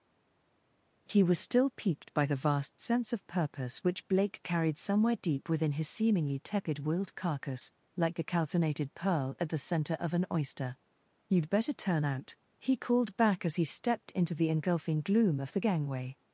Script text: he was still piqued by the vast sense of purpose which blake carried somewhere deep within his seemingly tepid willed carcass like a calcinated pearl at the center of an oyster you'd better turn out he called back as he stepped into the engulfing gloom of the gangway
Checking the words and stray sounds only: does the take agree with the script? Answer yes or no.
yes